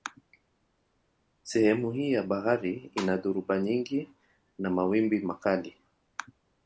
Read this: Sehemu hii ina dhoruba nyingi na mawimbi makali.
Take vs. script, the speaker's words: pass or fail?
fail